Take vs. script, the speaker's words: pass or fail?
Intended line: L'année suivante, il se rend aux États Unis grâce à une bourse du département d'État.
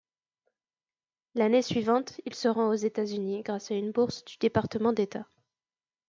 pass